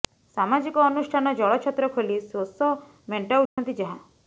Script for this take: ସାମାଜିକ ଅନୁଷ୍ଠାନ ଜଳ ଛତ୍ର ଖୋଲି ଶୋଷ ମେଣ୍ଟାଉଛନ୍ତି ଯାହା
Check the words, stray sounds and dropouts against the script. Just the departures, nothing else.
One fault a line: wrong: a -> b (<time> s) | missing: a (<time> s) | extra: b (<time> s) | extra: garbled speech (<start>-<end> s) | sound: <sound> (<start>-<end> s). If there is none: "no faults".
sound: dropout (3.5-3.6 s)